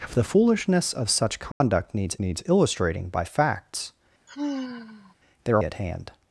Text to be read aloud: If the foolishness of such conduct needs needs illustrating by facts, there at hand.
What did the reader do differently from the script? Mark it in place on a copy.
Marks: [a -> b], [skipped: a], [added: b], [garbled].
If the foolishness of such conduct needs needs illustrating by facts, there at hand.